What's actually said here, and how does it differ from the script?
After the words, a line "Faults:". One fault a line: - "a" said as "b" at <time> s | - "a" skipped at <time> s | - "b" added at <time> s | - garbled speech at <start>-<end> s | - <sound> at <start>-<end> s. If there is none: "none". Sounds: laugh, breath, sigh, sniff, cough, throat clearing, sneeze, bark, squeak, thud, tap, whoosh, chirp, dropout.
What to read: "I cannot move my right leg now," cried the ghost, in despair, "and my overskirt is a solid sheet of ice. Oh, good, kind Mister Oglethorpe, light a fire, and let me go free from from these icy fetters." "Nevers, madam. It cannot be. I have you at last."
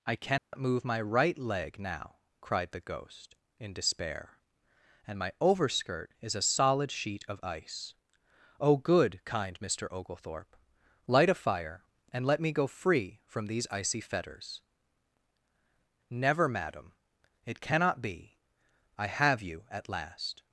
"I cannot move my right leg now," cried the ghost, in despair, "and my overskirt is a solid sheet of ice. Oh, good, kind Mister Oglethorpe, light a fire, and let me go free from these icy fetters." "Never, madam. It cannot be. I have you at last."
Faults:
- dropout at 0.4-0.5 s
- "from" skipped at 13.5 s
- "Nevers" said as "Never" at 16.1 s